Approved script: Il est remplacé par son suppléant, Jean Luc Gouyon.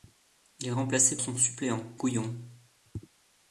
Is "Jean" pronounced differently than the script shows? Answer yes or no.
yes